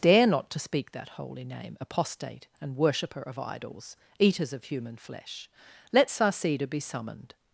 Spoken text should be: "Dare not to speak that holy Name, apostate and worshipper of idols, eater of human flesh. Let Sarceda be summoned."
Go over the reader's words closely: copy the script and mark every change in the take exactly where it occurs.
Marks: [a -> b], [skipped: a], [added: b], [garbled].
"Dare not to speak that holy Name, apostate and worshipper of idols, [eater -> eaters] of human flesh. Let Sarceda be summoned."